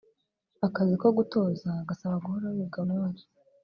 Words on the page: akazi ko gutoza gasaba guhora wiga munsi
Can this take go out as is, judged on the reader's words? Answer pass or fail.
pass